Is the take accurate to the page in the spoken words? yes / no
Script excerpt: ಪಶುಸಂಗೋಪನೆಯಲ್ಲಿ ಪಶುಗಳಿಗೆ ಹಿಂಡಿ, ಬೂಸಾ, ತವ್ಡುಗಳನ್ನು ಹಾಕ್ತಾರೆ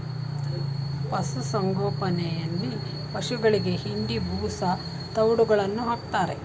yes